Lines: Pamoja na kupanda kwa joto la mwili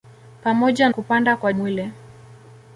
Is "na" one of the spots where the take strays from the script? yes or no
yes